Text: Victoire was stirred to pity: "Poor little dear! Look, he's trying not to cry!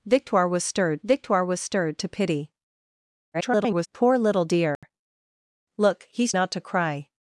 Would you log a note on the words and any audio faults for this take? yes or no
yes